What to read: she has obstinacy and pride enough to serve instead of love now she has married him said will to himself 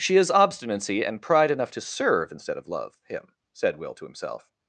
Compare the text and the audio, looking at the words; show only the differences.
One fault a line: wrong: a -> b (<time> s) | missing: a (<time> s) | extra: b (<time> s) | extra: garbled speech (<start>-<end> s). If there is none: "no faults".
missing: now she has married (3.0 s)